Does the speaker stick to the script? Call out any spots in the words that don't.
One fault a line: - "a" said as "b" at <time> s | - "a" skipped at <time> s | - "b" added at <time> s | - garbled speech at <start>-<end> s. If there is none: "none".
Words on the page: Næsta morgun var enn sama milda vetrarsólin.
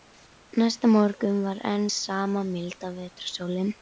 none